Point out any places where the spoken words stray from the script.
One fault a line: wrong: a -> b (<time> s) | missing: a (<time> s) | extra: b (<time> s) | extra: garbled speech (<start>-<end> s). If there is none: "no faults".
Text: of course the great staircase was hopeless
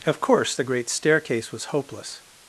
no faults